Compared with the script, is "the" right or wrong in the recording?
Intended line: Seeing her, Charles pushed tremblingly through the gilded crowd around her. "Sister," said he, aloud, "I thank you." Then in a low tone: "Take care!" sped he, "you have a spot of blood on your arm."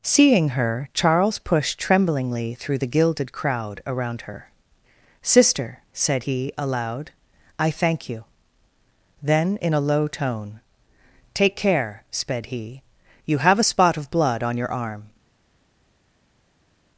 right